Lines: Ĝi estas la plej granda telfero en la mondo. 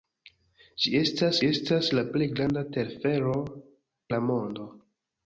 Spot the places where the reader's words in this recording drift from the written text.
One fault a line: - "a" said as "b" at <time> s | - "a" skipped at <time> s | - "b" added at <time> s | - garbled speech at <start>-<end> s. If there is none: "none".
- "estas" added at 1.5 s
- "en" skipped at 3.4 s